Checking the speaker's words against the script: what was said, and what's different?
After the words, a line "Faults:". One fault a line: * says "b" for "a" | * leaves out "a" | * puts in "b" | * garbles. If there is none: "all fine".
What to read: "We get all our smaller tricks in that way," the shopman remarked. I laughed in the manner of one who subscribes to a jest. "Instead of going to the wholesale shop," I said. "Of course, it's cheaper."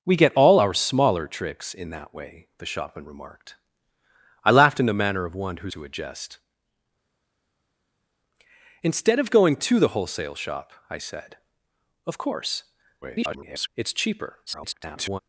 "We get all our smaller tricks in that way," the shopman remarked. I laughed in the manner of one who to a jest. "Instead of going to the wholesale shop," I said. "Of course, [garbled] it's cheaper." [garbled]
Faults:
* leaves out "subscribes"
* garbles
* garbles